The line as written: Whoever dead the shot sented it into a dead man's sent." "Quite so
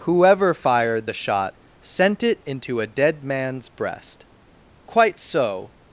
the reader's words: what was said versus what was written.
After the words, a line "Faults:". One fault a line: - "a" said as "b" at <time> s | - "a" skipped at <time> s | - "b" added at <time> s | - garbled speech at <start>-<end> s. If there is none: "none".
Whoever fired the shot sent it into a dead man's breast." "Quite so
Faults:
- "dead" said as "fired" at 0.5 s
- "sented" said as "sent" at 1.8 s
- "sent" said as "breast" at 3.7 s